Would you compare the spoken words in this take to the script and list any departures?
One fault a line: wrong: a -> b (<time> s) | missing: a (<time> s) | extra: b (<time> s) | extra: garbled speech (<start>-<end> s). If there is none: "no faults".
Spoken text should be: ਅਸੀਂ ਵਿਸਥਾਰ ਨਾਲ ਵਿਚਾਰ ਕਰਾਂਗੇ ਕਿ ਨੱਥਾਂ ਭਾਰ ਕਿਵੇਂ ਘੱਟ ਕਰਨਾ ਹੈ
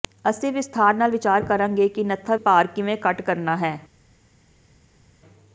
no faults